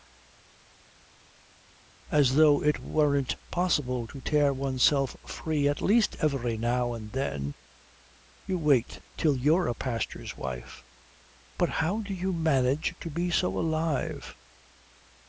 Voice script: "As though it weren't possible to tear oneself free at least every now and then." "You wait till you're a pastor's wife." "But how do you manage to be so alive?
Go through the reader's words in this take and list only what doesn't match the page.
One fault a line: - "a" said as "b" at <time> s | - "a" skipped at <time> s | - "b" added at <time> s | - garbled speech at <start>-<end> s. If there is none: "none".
none